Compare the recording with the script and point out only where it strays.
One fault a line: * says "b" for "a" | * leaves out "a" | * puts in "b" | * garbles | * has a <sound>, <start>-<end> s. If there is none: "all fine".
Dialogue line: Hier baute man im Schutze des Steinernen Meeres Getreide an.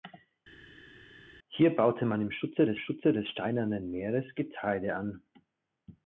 * puts in "Schutze des"